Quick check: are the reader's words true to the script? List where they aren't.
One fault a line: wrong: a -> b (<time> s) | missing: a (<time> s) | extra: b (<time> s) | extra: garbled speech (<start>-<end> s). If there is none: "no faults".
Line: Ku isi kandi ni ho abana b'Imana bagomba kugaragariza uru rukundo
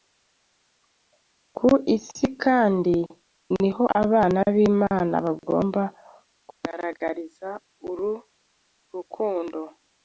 no faults